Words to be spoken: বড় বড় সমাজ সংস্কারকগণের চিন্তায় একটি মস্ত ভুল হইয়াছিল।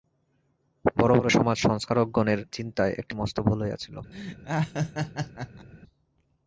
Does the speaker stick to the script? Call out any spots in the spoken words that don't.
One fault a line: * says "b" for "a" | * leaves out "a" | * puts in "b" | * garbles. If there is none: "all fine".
all fine